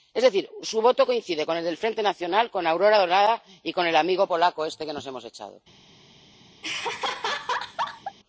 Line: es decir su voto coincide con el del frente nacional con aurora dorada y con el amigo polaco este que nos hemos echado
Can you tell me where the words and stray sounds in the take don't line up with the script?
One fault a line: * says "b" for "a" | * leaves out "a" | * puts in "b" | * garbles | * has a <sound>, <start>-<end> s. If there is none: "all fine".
* has a laugh, 6.6-8.2 s